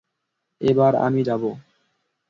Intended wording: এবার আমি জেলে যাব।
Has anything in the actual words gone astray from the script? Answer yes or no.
yes